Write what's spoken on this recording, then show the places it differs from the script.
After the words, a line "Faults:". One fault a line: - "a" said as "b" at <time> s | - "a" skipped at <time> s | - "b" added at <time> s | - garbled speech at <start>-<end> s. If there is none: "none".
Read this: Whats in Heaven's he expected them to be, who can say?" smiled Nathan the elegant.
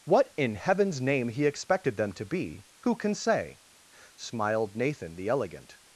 What in Heaven's name he expected them to be, who can say?" smiled Nathan the elegant.
Faults:
- "Whats" said as "What" at 0.0 s
- "name" added at 1.0 s